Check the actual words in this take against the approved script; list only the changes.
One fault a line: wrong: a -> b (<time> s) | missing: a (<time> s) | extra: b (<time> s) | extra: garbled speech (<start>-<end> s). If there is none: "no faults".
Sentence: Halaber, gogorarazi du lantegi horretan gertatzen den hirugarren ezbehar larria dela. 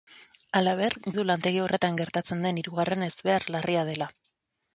missing: gogorarazi (0.9 s)